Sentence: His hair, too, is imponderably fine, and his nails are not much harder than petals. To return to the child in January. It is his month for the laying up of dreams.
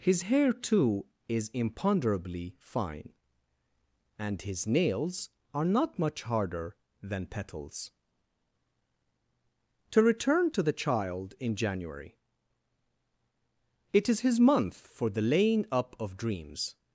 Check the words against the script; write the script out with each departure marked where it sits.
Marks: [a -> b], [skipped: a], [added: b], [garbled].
His hair, too, is imponderably fine, and his nails are not much harder than petals. To return to the child in January. It is his month for the laying up of dreams.